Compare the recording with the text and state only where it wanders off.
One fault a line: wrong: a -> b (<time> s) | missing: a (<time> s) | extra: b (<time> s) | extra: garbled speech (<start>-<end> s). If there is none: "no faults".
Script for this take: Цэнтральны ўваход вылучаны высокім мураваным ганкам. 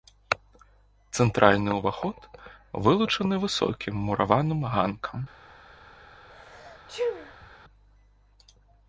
no faults